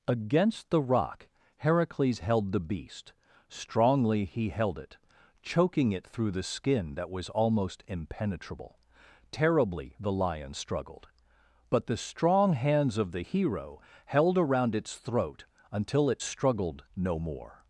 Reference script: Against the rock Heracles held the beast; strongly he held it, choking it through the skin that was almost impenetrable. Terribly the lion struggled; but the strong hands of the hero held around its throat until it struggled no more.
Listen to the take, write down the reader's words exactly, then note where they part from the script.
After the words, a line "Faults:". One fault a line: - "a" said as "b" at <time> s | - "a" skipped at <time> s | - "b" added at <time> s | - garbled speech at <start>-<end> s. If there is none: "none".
Against the rock Heracles held the beast; strongly he held it, choking it through the skin that was almost impenetrable. Terribly the lion struggled; but the strong hands of the hero held around its throat until it struggled no more.
Faults:
none